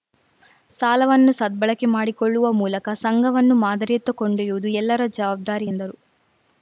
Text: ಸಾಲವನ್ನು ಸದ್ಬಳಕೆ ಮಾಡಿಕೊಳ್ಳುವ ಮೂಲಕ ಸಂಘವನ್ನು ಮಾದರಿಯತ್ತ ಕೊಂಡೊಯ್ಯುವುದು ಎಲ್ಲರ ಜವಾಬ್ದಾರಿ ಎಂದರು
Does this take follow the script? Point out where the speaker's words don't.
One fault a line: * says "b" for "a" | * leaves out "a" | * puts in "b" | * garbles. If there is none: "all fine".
all fine